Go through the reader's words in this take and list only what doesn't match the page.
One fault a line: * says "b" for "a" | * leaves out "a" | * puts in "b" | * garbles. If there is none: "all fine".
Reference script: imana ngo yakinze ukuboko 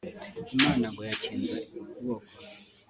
all fine